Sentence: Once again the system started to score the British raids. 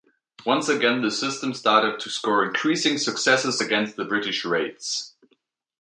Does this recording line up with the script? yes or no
no